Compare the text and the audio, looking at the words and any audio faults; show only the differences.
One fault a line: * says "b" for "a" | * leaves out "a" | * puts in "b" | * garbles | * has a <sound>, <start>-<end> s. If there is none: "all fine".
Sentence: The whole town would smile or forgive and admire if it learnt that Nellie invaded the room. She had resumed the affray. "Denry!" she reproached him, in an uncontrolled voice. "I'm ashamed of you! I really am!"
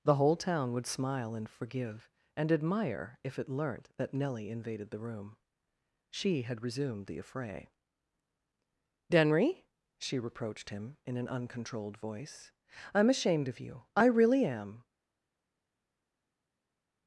* says "and" for "or"